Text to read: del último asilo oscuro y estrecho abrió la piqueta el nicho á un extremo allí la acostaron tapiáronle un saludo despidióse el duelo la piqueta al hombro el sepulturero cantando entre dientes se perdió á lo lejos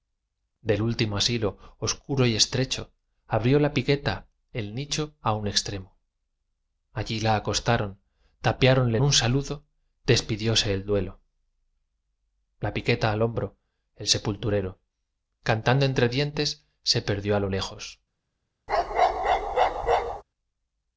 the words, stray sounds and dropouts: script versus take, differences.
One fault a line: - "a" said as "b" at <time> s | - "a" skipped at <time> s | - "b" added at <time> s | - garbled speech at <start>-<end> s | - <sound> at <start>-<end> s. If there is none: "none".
- bark at 18.7-20.2 s